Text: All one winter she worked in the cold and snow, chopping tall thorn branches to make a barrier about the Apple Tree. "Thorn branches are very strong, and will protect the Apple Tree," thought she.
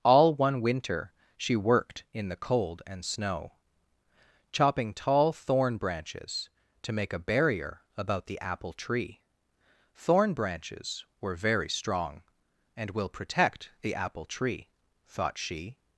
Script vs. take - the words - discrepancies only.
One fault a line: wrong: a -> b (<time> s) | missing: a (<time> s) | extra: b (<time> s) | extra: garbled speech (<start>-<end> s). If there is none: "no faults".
wrong: are -> were (11.2 s)